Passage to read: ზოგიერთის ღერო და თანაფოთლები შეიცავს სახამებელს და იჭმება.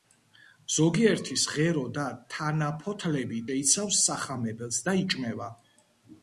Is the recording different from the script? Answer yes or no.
no